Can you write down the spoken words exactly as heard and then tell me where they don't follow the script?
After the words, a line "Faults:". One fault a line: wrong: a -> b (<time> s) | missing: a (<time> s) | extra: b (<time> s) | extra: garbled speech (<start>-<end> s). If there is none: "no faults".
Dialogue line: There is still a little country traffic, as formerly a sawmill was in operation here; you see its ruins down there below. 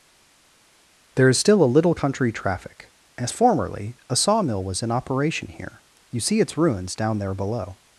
There is still a little country traffic, as formerly a sawmill was in operation here; you see its ruins down there below.
Faults:
no faults